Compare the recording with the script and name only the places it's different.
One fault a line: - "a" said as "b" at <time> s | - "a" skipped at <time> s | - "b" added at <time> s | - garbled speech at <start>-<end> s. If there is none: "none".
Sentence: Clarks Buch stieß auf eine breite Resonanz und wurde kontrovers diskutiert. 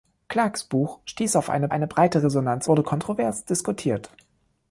- "eine" added at 1.7 s
- "und" skipped at 2.7 s